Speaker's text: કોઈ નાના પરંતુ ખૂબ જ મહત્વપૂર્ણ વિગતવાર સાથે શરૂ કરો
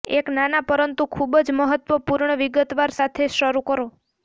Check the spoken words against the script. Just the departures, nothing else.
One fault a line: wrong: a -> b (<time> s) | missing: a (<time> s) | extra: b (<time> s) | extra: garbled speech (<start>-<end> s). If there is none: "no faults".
wrong: કોઈ -> એક (0.1 s)